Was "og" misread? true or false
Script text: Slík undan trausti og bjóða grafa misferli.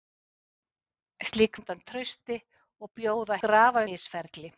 false